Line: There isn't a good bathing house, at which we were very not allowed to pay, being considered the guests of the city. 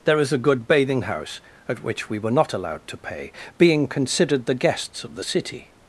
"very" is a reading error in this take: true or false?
true